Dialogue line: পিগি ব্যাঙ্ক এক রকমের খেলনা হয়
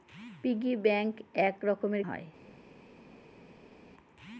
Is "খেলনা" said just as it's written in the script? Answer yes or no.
no